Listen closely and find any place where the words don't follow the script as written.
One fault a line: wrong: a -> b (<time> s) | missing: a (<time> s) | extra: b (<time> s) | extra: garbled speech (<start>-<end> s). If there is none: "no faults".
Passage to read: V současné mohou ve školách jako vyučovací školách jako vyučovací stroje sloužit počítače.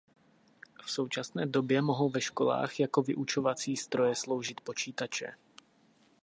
extra: době (1.4 s)
missing: školách jako vyučovací (3.8 s)